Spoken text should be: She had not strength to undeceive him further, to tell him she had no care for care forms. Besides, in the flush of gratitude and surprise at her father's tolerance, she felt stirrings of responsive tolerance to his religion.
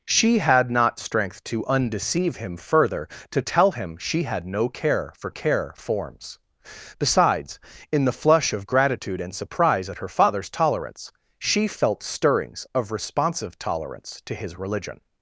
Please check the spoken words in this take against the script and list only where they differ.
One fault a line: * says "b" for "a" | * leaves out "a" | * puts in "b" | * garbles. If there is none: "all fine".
all fine